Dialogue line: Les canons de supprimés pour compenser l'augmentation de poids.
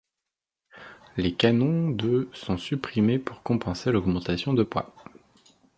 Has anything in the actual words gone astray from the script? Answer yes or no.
yes